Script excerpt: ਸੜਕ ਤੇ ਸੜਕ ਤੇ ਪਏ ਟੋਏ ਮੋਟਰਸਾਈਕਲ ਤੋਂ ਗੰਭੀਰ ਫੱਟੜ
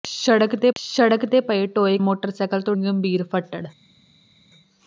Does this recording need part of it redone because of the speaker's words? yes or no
no